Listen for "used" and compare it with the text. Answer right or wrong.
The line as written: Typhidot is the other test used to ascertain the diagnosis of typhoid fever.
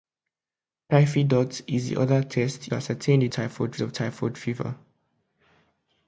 wrong